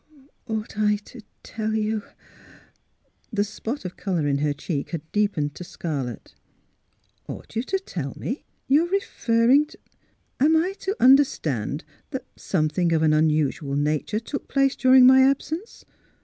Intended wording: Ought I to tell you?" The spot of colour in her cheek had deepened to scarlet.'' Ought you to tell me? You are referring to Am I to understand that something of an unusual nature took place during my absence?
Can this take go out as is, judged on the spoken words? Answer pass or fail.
pass